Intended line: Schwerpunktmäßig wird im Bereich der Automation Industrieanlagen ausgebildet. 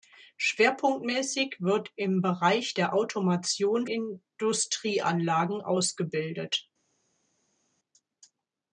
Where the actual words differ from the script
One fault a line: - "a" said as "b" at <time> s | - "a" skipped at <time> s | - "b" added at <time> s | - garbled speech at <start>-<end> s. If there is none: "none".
none